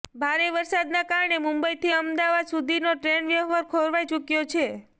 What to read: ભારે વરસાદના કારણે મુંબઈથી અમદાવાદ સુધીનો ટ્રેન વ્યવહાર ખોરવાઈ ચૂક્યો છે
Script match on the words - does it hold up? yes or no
yes